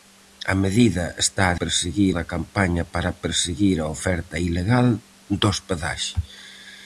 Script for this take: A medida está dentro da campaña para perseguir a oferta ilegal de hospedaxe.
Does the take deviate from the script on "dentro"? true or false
true